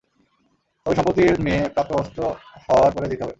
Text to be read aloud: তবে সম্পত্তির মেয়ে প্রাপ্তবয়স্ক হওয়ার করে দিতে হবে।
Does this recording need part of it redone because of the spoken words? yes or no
no